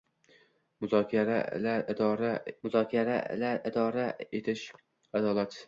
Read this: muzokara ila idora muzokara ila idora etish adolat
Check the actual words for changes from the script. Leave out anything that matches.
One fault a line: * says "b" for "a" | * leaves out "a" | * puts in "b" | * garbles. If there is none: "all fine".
all fine